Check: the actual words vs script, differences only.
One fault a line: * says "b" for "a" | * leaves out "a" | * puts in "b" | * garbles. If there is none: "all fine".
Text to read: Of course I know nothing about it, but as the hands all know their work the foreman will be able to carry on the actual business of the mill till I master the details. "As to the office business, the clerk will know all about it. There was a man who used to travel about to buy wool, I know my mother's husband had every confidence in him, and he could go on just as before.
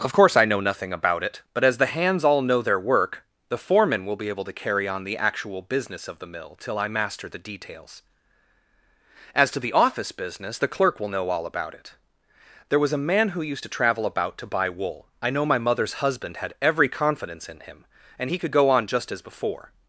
all fine